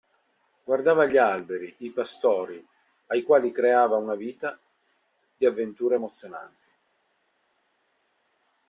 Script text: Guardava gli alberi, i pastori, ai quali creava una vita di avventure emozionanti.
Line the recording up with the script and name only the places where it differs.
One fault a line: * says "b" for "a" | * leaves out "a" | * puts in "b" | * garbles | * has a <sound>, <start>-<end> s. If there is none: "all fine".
all fine